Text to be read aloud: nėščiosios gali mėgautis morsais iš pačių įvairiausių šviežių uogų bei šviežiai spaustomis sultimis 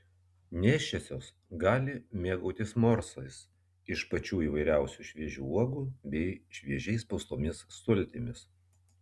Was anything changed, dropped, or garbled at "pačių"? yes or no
no